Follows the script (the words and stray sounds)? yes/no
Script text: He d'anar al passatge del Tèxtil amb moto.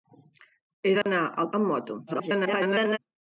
no